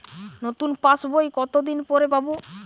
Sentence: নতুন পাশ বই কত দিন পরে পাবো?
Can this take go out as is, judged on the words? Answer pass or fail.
pass